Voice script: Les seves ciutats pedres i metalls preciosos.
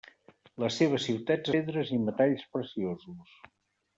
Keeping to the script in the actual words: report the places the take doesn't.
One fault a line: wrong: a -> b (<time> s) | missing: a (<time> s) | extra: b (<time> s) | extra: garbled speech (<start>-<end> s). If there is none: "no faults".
no faults